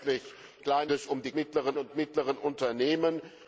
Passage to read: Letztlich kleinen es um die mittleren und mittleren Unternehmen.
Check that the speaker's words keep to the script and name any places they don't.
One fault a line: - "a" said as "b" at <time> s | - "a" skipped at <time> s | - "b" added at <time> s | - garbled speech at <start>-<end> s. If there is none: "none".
none